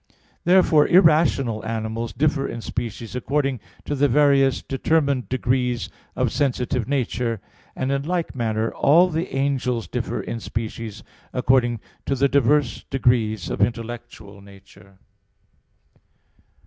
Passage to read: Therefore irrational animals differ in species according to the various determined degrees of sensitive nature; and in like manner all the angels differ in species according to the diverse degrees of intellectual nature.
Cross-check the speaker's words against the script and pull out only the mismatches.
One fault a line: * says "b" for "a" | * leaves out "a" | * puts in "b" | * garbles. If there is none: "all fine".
all fine